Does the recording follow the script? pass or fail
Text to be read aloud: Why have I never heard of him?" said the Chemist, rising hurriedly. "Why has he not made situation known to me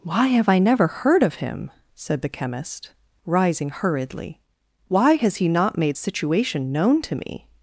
pass